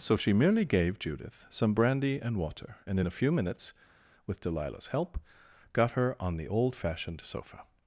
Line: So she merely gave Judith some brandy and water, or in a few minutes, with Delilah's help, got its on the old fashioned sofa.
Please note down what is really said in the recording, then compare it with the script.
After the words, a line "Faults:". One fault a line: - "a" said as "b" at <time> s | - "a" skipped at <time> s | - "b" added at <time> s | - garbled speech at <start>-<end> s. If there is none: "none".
So she merely gave Judith some brandy and water, and in a few minutes, with Delilah's help, got her on the old fashioned sofa.
Faults:
- "or" said as "and" at 2.9 s
- "its" said as "her" at 5.9 s